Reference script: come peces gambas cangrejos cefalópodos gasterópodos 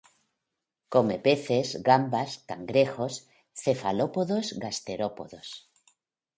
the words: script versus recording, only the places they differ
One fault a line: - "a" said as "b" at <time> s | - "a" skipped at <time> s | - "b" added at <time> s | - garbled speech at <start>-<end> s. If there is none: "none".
none